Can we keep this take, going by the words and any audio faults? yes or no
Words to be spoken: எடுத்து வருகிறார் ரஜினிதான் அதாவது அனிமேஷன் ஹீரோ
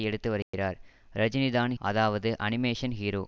no